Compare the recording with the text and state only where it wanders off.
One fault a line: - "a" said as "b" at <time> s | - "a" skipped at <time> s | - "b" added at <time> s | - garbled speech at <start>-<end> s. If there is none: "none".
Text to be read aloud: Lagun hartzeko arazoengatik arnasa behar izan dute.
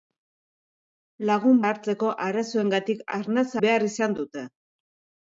none